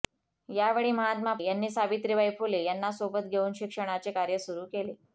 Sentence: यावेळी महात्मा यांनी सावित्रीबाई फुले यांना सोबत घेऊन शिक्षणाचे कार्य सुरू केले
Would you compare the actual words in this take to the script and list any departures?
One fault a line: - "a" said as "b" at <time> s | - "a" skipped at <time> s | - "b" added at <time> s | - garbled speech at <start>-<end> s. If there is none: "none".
none